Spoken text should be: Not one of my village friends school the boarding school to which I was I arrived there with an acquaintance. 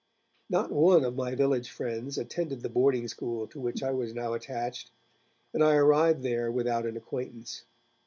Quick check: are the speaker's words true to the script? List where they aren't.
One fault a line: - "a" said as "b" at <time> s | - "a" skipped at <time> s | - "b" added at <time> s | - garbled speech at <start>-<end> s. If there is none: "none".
- "school" said as "attended" at 2.2 s
- "now attached and" added at 4.1 s
- "with" said as "without" at 6.5 s